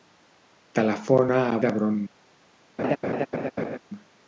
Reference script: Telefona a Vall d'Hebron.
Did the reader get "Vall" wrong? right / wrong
wrong